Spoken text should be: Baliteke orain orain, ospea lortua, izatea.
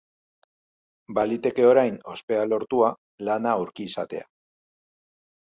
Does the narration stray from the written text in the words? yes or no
yes